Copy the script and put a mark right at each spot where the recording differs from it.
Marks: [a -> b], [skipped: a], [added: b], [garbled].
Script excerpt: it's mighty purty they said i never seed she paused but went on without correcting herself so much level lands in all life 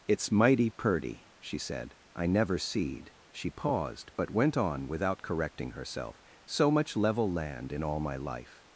it's mighty purty [they -> she] said i never seed she paused but went on without correcting herself so much level [lands -> land] in all [added: my] life